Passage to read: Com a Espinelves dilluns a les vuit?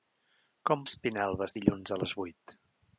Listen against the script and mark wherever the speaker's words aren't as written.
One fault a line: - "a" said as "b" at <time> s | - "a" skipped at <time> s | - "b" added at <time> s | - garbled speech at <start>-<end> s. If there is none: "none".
none